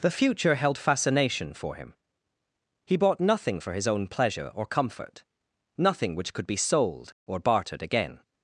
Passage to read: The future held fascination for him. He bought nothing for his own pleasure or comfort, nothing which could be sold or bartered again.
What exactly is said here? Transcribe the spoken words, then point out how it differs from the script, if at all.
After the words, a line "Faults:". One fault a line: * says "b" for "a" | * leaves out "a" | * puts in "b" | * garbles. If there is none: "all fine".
The future held fascination for him. He bought nothing for his own pleasure or comfort, nothing which could be sold or bartered again.
Faults:
all fine